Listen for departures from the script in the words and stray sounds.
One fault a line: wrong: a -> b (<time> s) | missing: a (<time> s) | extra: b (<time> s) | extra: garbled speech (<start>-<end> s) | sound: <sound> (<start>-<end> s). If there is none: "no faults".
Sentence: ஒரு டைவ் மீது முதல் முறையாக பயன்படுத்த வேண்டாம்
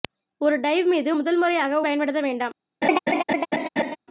sound: laugh (2.8-4.0 s)